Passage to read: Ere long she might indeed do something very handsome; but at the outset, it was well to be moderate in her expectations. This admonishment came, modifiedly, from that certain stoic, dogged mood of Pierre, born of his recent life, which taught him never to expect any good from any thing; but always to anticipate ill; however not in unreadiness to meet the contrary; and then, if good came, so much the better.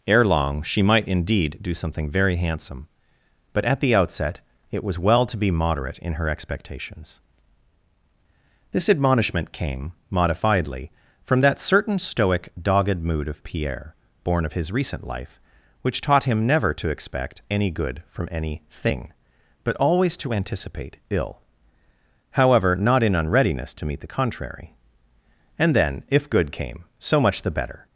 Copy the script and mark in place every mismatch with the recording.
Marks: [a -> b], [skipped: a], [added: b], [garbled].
Ere long she might indeed do something very handsome; but at the outset, it was well to be moderate in her expectations. This admonishment came, modifiedly, from that certain stoic, dogged mood of Pierre, born of his recent life, which taught him never to expect any good from any thing; but always to anticipate ill; however not in unreadiness to meet the contrary; and then, if good came, so much the better.